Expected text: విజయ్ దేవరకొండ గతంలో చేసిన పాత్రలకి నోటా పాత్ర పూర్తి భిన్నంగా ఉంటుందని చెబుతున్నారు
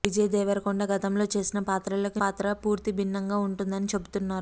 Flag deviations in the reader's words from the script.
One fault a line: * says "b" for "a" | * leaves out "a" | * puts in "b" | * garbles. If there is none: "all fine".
* leaves out "నోటా"